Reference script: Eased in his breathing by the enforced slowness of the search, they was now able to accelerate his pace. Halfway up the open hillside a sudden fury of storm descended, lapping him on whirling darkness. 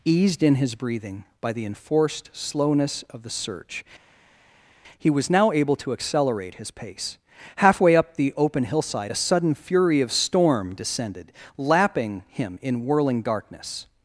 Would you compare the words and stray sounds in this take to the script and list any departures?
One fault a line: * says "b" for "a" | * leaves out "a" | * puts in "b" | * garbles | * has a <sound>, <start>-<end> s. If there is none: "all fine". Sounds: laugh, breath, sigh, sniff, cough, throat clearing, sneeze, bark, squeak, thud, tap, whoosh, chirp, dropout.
* says "he" for "they"
* says "in" for "on"